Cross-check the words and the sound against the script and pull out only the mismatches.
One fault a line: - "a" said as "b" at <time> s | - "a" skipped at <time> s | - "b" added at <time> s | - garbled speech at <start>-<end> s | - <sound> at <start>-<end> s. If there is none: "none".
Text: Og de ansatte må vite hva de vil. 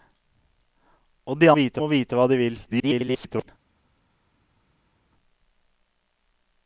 - "ansatte" said as "vite" at 1.6 s
- garbled speech at 2.6-3.5 s